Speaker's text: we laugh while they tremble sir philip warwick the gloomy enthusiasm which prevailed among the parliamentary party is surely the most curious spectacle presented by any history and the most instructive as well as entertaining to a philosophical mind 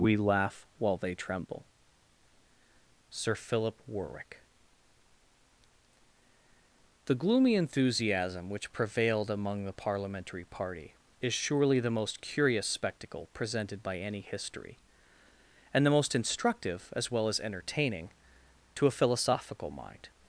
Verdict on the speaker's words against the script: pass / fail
pass